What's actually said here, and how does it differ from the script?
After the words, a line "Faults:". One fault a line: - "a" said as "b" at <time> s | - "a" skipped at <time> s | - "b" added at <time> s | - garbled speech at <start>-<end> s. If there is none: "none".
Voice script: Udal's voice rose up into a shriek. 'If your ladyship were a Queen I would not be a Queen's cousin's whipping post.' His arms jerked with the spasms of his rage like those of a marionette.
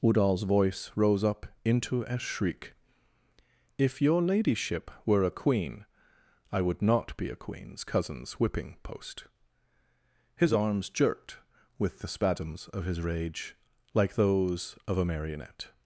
Udal's voice rose up into a shriek. 'If your ladyship were a Queen I would not be a Queen's cousin's whipping post.' His arms jerked with the spasms of his rage like those of a marionette.
Faults:
none